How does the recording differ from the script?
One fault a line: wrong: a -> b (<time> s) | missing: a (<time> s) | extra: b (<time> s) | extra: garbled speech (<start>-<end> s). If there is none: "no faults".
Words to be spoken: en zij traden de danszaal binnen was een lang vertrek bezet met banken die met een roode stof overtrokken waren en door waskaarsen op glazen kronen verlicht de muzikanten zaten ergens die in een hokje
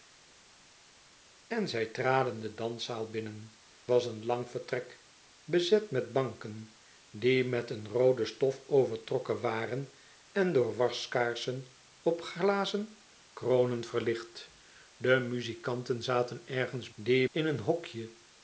no faults